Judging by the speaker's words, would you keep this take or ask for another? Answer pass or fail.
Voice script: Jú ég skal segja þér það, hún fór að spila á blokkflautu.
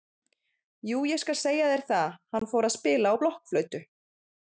fail